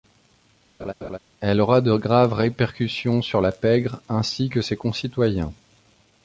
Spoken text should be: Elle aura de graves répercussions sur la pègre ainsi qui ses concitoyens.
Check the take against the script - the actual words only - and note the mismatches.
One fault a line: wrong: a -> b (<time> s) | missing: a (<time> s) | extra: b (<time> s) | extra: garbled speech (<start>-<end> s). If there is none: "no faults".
wrong: qui -> que (4.5 s)